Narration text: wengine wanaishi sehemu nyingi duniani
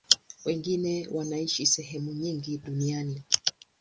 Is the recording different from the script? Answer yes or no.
no